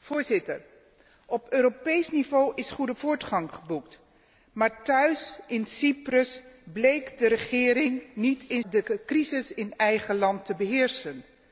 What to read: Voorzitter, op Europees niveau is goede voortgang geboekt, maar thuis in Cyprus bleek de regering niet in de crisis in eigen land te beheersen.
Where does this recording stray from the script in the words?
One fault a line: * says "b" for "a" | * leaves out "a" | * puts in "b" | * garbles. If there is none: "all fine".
all fine